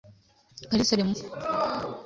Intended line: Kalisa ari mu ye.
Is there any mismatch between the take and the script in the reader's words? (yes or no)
no